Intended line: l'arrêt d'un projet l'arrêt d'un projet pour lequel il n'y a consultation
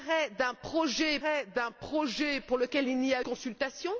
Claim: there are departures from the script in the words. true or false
false